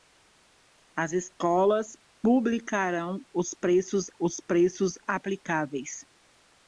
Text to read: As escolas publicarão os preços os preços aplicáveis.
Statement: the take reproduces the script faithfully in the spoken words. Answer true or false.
true